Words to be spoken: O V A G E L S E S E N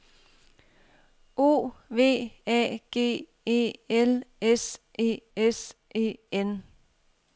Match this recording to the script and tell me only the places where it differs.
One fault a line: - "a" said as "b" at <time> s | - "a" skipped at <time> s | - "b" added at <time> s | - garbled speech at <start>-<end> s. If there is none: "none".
none